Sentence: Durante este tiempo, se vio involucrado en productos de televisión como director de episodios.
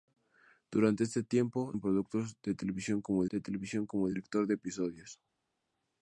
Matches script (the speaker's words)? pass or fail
fail